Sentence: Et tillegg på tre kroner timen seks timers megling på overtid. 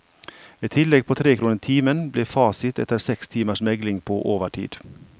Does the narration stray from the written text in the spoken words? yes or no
yes